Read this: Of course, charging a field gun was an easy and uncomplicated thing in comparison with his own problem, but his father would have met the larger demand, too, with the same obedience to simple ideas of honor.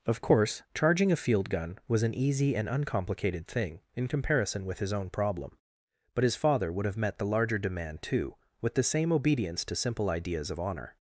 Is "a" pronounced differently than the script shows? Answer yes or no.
no